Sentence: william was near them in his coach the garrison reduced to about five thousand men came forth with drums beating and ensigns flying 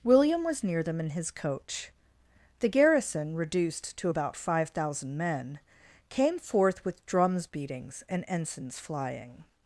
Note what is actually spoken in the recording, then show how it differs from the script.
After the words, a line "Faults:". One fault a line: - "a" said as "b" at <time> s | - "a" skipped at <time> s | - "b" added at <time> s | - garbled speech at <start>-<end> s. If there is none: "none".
william was near them in his coach the garrison reduced to about five thousand men came forth with drums beatings and ensigns flying
Faults:
- "beating" said as "beatings" at 7.5 s